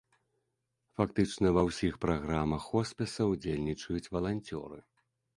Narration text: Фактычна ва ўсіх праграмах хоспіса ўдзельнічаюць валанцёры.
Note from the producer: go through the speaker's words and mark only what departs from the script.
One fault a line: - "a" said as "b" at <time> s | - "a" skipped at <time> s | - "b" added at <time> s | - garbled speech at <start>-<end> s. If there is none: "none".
none